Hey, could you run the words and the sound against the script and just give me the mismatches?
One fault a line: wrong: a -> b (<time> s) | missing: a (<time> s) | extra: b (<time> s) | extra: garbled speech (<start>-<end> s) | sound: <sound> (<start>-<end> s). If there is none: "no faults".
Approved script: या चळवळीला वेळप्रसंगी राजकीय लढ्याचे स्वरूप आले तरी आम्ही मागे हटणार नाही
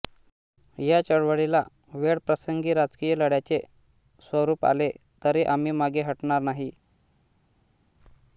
no faults